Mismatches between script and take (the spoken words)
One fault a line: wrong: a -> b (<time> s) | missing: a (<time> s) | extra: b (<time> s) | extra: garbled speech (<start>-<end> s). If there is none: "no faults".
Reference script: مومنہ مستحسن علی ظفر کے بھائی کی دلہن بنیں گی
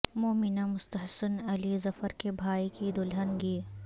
missing: بنیں (3.4 s)